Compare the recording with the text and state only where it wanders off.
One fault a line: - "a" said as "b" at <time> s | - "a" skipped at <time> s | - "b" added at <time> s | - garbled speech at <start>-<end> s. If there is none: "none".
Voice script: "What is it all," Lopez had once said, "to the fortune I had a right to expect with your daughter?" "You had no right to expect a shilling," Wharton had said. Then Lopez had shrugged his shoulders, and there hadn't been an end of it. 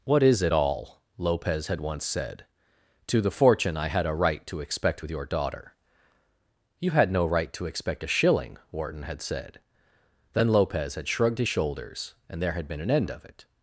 - "hadn't" said as "had" at 12.5 s